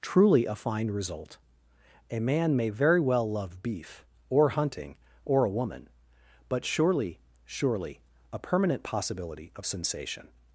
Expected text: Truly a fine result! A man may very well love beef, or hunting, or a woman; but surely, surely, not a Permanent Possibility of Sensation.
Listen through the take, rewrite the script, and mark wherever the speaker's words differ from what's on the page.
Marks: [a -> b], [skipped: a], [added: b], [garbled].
Truly a fine result! A man may very well love beef, or hunting, or a woman; but surely, surely, [skipped: not] a Permanent Possibility of Sensation.